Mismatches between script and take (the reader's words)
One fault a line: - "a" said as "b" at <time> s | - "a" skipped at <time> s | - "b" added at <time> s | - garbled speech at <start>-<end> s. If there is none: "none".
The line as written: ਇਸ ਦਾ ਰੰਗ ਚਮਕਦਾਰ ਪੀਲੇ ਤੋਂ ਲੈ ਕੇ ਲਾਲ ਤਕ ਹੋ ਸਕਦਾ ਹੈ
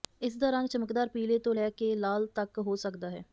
none